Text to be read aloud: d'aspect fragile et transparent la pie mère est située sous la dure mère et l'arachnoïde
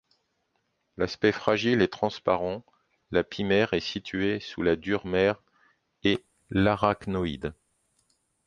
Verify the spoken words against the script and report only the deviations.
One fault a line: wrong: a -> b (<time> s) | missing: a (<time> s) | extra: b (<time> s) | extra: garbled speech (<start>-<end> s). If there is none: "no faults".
no faults